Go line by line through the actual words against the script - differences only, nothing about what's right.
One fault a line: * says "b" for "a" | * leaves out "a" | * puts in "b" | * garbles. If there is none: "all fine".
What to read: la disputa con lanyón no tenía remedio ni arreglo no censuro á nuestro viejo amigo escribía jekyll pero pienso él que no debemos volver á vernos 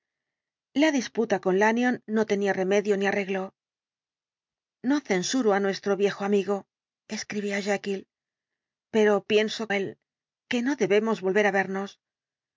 all fine